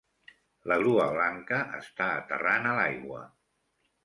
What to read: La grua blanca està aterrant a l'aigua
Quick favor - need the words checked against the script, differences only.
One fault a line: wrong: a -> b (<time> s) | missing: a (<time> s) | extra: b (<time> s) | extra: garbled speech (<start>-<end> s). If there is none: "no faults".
no faults